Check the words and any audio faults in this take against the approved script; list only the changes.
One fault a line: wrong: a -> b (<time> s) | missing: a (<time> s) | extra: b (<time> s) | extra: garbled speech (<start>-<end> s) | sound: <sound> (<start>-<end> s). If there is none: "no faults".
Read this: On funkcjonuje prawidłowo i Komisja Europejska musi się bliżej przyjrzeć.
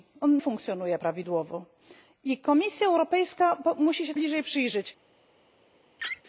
sound: laugh (6.0-6.2 s)